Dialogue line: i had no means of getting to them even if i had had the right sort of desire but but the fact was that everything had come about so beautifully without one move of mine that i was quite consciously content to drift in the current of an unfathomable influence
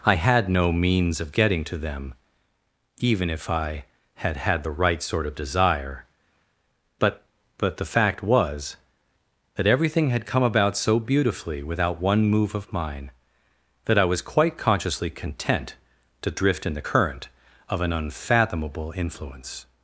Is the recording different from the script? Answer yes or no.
no